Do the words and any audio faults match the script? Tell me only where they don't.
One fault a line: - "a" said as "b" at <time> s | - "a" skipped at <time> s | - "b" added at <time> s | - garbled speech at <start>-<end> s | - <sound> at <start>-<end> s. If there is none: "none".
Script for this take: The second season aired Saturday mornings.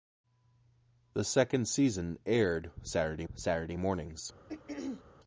- "Saturday" added at 3.3 s
- throat clearing at 4.5-5.0 s